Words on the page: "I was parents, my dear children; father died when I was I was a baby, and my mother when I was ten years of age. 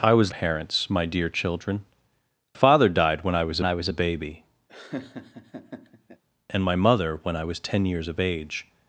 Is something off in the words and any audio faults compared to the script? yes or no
yes